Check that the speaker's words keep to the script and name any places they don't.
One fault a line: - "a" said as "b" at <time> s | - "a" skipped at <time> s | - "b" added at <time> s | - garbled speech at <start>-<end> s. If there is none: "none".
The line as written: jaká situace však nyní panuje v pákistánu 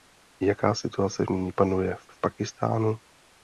- "však" skipped at 1.2 s
- "v" added at 2.1 s